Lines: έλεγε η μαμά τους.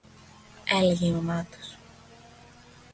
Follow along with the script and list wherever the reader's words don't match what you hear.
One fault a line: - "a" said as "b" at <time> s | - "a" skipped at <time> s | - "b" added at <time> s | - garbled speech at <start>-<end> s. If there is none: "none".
none